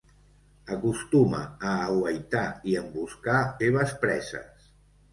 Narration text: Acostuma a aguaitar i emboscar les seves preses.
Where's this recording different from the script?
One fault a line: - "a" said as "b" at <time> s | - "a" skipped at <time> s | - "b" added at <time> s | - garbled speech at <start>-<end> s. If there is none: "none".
- "les" skipped at 3.4 s